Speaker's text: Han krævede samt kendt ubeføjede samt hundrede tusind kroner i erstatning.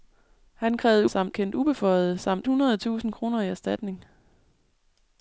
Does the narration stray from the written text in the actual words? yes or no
no